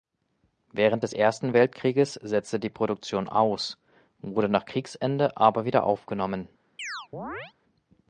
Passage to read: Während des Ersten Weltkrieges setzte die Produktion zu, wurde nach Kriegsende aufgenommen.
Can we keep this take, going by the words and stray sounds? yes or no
no